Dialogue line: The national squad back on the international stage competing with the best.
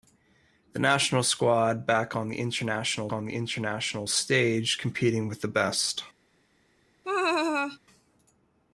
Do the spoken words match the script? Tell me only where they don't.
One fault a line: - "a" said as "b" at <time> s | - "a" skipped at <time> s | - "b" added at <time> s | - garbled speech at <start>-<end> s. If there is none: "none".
- "on the international" added at 3.1 s